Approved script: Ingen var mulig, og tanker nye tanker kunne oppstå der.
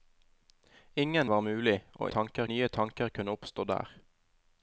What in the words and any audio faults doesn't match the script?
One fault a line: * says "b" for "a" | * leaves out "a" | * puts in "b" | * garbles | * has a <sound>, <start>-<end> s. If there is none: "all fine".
all fine